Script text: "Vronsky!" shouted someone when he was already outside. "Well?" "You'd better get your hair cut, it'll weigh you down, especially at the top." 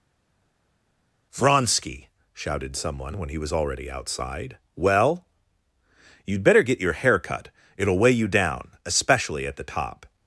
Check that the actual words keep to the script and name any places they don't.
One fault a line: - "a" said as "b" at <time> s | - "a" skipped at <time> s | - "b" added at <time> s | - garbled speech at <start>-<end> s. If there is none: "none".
none